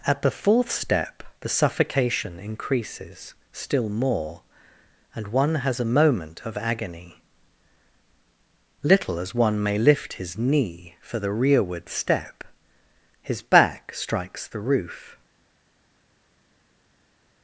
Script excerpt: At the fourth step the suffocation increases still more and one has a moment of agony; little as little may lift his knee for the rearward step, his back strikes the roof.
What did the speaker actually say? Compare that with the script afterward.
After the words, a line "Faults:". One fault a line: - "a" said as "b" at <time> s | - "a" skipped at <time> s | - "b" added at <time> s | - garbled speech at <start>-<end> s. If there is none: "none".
At the fourth step the suffocation increases still more and one has a moment of agony; little as one may lift his knee for the rearward step, his back strikes the roof.
Faults:
- "little" said as "one" at 9.3 s